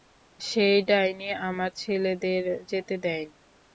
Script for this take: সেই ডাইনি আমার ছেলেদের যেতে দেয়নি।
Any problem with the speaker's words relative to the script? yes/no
no